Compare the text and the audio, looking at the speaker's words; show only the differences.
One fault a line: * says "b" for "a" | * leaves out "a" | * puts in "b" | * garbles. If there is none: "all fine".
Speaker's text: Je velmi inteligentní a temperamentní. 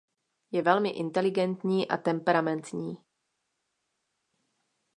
all fine